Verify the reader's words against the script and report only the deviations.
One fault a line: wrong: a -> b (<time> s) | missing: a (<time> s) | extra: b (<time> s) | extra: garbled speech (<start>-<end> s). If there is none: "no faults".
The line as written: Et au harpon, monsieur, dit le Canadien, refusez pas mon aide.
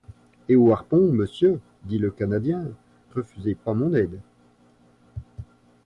no faults